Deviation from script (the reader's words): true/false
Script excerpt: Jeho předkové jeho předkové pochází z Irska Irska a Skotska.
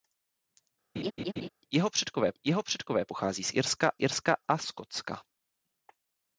false